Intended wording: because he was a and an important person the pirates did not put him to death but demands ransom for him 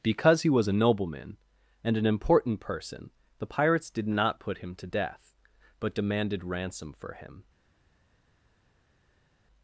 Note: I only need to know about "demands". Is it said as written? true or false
false